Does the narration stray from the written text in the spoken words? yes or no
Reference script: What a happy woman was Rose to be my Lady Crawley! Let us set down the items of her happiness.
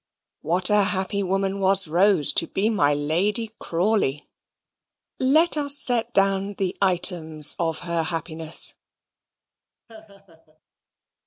no